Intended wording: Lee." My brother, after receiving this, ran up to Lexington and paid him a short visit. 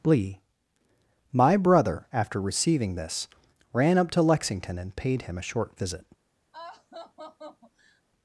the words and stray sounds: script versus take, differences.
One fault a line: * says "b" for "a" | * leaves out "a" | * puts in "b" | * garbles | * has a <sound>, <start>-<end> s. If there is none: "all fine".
* has a laugh, 6.5-8.0 s